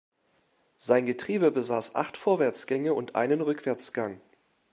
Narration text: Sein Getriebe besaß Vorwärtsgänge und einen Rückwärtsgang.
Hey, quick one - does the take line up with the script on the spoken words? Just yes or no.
no